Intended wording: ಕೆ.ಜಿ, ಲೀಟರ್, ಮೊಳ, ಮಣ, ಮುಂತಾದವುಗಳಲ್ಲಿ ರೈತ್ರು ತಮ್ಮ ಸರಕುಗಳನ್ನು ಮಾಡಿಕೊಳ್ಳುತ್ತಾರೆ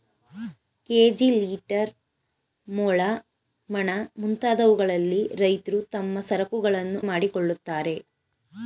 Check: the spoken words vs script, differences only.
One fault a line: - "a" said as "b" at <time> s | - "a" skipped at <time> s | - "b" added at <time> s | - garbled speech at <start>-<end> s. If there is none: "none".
none